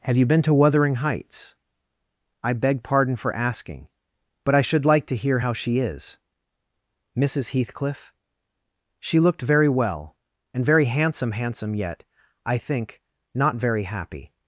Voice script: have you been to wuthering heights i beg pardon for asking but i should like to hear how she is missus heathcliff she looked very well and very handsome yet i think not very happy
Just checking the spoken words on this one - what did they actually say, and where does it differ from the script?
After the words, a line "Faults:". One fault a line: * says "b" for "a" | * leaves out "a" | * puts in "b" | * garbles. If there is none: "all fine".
have you been to wuthering heights i beg pardon for asking but i should like to hear how she is missus heathcliff she looked very well and very handsome handsome yet i think not very happy
Faults:
* puts in "handsome"